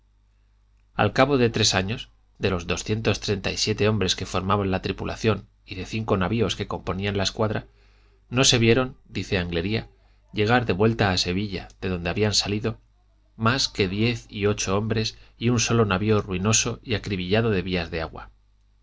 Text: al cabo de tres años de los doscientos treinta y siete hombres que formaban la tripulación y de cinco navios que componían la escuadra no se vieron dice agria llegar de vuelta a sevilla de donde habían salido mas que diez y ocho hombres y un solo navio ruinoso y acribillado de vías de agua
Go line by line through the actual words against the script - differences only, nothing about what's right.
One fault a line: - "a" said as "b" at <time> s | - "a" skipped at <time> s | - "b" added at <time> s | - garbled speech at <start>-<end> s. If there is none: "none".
none